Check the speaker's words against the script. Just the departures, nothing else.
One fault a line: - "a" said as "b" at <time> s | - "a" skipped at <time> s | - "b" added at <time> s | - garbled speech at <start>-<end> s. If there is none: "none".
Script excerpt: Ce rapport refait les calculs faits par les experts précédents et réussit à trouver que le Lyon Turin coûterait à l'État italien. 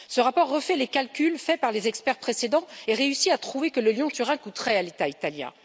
none